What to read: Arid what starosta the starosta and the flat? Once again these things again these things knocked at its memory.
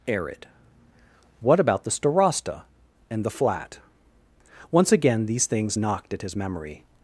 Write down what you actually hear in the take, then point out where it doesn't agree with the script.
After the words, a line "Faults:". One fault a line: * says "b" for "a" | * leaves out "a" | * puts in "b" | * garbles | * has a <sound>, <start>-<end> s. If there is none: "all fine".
Arid what about the starosta and the flat? Once again these things knocked at his memory.
Faults:
* says "about" for "starosta"
* leaves out "again these things"
* says "his" for "its"